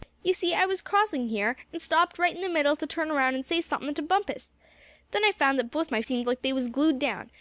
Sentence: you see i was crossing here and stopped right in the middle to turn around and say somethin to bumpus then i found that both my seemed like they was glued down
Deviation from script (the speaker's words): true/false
false